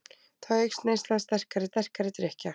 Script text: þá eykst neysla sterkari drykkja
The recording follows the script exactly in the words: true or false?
false